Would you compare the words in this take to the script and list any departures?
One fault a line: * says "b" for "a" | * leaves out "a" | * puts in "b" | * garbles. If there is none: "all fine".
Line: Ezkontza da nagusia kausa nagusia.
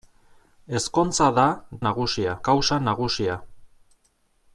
all fine